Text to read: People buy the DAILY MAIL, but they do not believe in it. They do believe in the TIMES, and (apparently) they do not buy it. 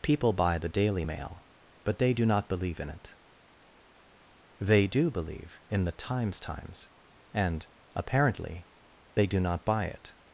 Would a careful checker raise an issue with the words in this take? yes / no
yes